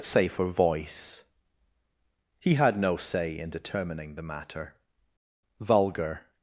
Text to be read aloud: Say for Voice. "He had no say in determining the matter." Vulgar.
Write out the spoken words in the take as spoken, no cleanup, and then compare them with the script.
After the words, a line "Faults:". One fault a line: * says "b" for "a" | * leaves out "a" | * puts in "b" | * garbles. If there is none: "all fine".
Say for Voice. "He had no say in determining the matter." Vulgar.
Faults:
all fine